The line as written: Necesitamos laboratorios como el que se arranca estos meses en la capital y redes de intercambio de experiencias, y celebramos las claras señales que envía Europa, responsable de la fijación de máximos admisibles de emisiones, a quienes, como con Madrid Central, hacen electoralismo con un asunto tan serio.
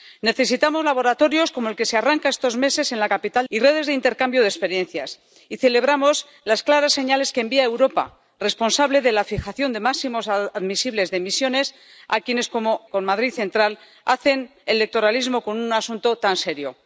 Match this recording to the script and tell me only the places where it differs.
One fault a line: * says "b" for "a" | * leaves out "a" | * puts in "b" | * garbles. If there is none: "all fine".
all fine